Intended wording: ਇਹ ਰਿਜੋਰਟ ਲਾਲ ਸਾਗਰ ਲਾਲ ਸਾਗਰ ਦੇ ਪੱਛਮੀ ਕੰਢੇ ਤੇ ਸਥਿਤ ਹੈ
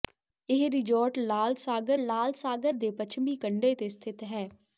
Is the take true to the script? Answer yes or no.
yes